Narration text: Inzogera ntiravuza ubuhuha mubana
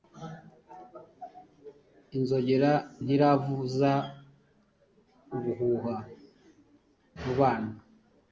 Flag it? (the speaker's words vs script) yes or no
no